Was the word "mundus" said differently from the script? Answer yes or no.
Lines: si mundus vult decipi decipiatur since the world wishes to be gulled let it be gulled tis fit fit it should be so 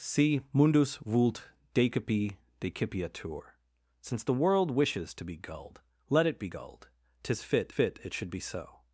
no